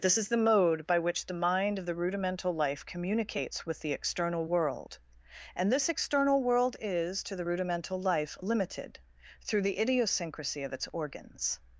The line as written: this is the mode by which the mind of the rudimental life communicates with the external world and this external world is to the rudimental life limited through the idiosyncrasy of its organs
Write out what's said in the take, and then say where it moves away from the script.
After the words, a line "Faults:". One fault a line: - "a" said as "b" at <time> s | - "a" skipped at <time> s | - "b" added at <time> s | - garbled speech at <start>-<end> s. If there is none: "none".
this is the mode by which the mind of the rudimental life communicates with the external world and this external world is to the rudimental life limited through the idiosyncrasy of its organs
Faults:
none